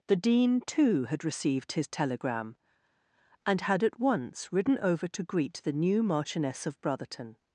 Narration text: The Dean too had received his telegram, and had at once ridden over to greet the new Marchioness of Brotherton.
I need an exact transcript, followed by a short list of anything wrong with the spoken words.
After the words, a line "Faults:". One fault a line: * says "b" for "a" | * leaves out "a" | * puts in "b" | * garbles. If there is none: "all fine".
The Dean too had received his telegram, and had at once ridden over to greet the new Marchioness of Brotherton.
Faults:
all fine